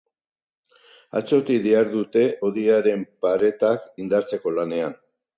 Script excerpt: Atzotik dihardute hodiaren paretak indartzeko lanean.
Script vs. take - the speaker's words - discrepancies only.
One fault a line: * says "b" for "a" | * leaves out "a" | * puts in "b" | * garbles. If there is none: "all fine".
all fine